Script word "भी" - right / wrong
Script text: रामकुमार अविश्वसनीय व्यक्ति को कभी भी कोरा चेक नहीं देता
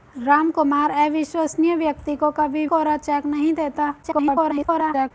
wrong